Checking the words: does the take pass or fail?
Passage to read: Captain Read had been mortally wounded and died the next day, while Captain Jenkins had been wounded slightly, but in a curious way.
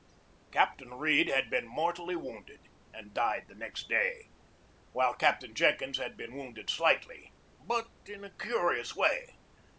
pass